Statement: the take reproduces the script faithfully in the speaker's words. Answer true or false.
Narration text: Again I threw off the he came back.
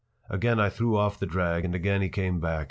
false